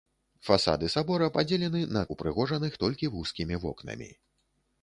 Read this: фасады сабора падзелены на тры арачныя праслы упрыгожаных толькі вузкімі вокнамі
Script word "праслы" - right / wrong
wrong